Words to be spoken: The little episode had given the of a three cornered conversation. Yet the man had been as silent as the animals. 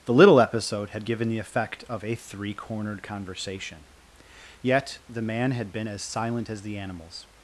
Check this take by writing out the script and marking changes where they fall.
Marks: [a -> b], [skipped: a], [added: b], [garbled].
The little episode had given the [added: effect] of a three cornered conversation. Yet the man had been as silent as the animals.